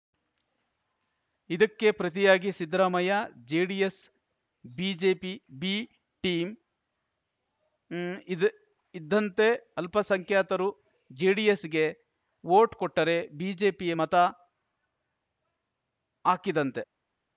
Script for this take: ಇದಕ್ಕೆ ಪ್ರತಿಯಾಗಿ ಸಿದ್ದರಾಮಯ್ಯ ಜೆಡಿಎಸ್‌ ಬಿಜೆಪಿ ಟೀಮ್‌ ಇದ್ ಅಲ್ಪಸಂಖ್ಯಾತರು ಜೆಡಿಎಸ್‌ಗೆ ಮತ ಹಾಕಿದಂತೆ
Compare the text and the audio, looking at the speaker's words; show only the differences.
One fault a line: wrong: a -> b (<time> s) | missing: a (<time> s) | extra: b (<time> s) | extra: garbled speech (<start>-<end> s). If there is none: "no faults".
extra: ಬಿ (5.6 s)
extra: ಇದ್ದಂತೆ (8.9 s)
extra: ವೋಟ್ ಕೊಟ್ಟರೆ ಬಿಜೆಪಿಗೆ (12.4 s)